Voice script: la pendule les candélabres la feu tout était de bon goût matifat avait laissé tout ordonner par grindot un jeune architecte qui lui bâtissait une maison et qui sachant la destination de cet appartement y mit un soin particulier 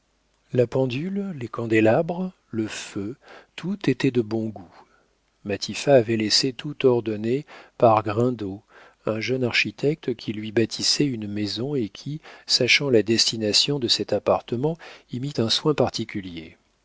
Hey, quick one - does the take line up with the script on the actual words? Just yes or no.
no